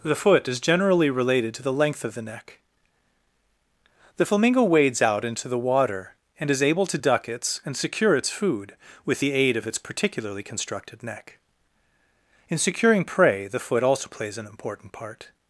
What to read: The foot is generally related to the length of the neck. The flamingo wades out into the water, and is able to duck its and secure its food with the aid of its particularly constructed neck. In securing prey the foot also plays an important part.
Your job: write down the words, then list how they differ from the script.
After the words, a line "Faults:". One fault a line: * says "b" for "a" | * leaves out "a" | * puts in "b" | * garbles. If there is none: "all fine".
The foot is generally related to the length of the neck. The flamingo wades out into the water, and is able to duck its and secure its food with the aid of its particularly constructed neck. In securing prey the foot also plays an important part.
Faults:
all fine